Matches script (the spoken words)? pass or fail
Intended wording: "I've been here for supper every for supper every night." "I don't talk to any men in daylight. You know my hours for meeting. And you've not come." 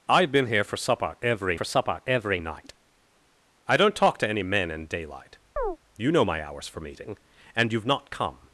pass